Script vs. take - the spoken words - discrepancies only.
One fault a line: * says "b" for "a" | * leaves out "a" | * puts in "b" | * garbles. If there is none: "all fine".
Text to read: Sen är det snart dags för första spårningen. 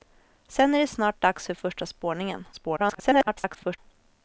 * garbles